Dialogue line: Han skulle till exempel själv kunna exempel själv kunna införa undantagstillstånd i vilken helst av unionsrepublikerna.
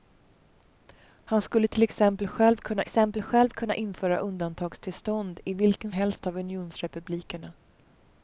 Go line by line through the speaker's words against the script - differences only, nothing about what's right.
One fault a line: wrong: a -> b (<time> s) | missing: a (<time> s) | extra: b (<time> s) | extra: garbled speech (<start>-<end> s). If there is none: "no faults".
no faults